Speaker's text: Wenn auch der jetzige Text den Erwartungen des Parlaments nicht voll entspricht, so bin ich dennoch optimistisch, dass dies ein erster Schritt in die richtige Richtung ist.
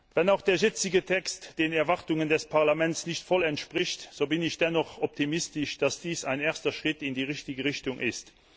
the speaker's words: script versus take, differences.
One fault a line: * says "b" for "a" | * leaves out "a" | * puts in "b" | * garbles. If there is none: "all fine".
all fine